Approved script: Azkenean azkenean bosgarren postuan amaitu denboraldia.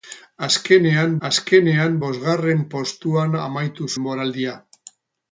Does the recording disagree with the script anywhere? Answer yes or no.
no